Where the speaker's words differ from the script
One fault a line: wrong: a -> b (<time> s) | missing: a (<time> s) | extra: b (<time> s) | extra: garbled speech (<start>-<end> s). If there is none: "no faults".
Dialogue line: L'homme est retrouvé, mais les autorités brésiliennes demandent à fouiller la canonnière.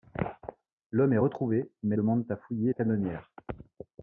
missing: les autorités brésiliennes (2.0 s)
missing: la (2.7 s)